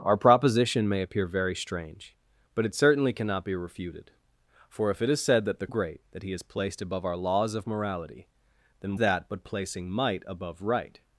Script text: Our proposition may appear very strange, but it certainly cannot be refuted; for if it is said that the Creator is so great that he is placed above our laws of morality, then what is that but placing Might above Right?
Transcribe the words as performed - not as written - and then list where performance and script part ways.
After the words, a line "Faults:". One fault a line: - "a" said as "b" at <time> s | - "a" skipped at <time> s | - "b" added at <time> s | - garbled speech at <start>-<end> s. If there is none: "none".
Our proposition may appear very strange, but it certainly cannot be refuted; for if it is said that the Great that he is placed above our laws of morality, then that but placing Might above Right?
Faults:
- "Creator is so" skipped at 5.7 s
- "what is" skipped at 9.0 s